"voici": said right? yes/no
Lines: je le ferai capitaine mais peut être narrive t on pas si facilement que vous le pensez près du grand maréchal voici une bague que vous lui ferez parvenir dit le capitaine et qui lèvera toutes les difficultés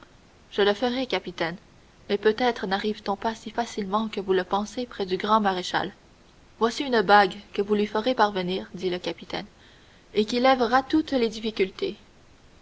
yes